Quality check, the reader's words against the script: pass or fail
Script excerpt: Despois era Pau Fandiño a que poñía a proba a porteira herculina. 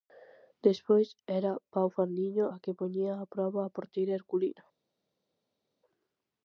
pass